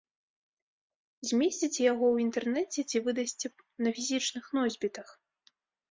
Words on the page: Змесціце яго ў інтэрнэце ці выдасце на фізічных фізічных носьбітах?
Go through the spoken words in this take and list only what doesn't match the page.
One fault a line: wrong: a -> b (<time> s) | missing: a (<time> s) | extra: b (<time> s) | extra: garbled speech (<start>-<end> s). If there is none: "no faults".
missing: фізічных (4.4 s)